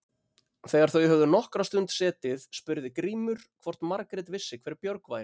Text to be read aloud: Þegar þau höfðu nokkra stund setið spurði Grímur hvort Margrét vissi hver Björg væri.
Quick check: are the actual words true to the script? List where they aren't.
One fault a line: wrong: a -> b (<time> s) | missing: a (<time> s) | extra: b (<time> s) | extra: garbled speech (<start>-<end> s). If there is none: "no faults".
no faults